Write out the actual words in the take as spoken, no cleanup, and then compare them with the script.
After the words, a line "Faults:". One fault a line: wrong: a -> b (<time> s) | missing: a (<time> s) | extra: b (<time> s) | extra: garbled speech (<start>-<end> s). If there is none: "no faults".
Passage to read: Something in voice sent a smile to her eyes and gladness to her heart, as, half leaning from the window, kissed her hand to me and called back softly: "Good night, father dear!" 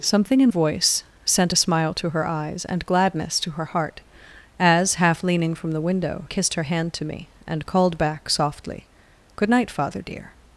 Something in voice sent a smile to her eyes and gladness to her heart, as, half leaning from the window, kissed her hand to me and called back softly: "Good night, father dear!"
Faults:
no faults